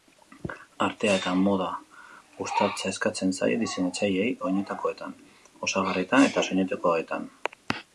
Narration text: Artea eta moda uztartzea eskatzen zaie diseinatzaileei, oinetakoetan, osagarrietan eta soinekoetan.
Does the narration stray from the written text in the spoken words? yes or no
no